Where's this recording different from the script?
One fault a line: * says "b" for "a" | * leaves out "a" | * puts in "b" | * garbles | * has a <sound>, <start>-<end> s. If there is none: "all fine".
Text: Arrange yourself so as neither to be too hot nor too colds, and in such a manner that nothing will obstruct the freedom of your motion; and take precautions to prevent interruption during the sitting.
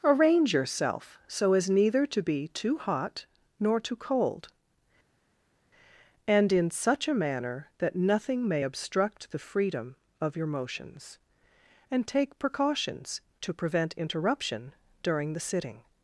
* says "cold" for "colds"
* says "may" for "will"
* says "motions" for "motion"